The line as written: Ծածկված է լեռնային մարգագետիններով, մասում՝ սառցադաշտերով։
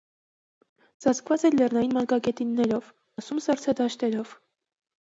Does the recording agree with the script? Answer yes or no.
yes